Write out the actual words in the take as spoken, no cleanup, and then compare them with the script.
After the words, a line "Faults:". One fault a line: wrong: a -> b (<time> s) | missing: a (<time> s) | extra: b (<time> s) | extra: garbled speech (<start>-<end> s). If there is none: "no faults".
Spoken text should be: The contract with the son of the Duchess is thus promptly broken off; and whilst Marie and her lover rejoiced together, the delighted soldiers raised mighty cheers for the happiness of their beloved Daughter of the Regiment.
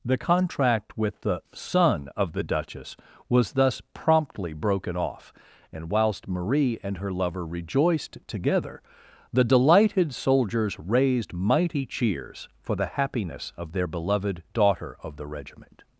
The contract with the son of the Duchess was thus promptly broken off; and whilst Marie and her lover rejoiced together, the delighted soldiers raised mighty cheers for the happiness of their beloved Daughter of the Regiment.
Faults:
wrong: is -> was (3.3 s)